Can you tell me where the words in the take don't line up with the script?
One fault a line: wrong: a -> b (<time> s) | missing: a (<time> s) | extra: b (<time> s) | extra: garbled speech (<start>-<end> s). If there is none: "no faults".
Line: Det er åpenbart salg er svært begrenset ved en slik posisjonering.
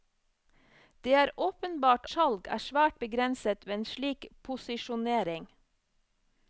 no faults